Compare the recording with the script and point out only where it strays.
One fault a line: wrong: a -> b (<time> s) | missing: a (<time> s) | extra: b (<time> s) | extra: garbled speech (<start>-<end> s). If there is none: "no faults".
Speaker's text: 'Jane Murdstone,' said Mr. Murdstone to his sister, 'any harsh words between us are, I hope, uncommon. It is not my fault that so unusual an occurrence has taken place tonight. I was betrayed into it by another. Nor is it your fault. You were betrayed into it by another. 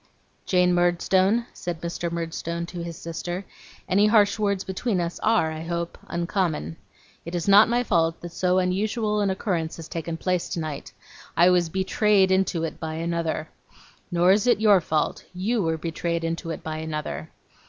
no faults